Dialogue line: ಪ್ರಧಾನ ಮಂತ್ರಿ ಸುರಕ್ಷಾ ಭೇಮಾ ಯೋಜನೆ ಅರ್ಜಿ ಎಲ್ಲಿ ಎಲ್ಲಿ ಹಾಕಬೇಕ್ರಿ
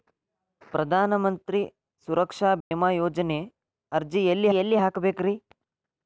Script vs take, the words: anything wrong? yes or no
no